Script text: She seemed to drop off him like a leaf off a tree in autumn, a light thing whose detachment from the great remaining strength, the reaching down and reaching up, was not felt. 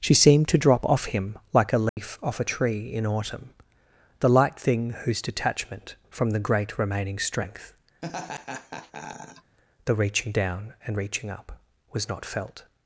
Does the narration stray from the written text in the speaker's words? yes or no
yes